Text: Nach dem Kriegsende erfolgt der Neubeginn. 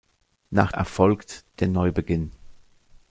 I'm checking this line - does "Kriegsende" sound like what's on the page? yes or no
no